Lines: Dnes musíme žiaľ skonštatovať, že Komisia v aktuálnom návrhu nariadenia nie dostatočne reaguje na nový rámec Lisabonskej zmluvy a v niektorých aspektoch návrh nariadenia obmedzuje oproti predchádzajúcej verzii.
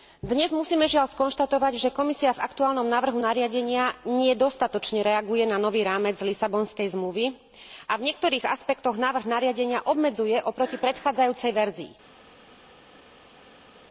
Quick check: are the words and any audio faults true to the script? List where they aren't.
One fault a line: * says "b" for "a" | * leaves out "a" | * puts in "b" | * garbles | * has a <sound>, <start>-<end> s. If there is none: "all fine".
all fine